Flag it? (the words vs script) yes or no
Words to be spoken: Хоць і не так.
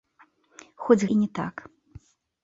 no